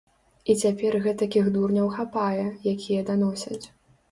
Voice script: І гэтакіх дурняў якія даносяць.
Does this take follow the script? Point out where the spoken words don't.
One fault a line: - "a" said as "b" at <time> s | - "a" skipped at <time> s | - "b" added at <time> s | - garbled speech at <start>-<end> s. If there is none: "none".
- "цяпер" added at 0.6 s
- "хапае" added at 2.0 s